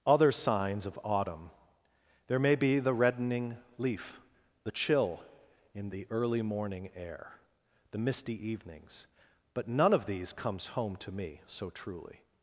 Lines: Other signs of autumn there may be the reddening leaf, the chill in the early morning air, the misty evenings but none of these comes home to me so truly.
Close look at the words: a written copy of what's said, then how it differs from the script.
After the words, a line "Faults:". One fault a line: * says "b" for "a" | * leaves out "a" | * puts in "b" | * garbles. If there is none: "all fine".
Other signs of autumn there may be the reddening leaf, the chill in the early morning air, the misty evenings but none of these comes home to me so truly.
Faults:
all fine